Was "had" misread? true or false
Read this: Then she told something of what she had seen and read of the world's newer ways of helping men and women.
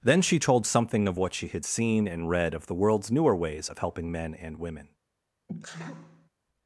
false